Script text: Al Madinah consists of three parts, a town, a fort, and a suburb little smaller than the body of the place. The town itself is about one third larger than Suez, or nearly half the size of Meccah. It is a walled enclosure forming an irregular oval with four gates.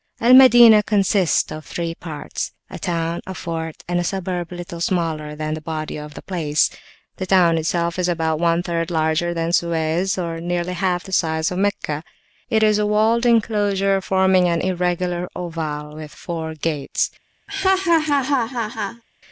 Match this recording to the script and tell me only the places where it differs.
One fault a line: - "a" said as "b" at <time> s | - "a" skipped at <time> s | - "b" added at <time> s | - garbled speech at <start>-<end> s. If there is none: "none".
none